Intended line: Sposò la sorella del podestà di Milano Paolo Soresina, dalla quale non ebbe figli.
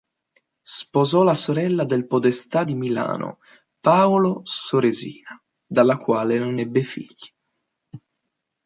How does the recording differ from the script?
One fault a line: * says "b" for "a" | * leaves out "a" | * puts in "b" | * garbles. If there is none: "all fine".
all fine